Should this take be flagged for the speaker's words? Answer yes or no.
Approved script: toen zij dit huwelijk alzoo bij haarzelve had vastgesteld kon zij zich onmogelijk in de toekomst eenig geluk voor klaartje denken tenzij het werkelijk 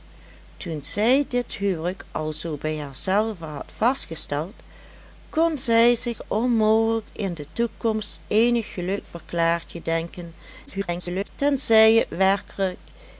yes